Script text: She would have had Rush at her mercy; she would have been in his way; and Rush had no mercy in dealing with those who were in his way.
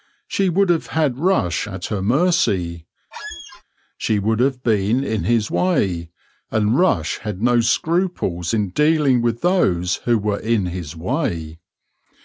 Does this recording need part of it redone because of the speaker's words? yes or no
yes